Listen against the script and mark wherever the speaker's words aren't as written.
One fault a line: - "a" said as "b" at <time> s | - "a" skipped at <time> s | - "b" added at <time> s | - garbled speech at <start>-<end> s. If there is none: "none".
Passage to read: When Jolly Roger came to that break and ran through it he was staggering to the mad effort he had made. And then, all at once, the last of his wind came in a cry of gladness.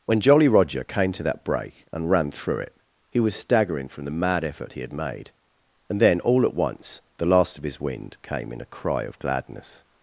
- "to" said as "from" at 3.9 s